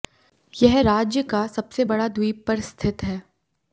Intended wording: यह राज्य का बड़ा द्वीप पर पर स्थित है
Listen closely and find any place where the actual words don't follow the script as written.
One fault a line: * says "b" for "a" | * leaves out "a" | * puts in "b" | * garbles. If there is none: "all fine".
* puts in "सबसे"
* leaves out "पर"